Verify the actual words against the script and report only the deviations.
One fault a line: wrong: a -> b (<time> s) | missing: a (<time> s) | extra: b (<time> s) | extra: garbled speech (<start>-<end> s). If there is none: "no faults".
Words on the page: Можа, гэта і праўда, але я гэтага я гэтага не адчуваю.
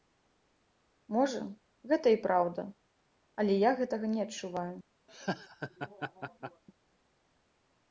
missing: я гэтага (4.0 s)